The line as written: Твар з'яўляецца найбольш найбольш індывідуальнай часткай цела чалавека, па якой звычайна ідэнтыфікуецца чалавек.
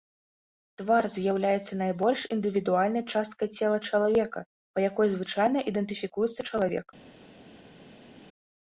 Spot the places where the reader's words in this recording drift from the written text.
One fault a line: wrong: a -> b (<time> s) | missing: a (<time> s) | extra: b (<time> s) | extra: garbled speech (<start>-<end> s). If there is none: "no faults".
missing: найбольш (2.2 s)